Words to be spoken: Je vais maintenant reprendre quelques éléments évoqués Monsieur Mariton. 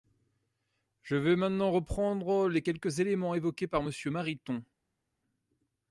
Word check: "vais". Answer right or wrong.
right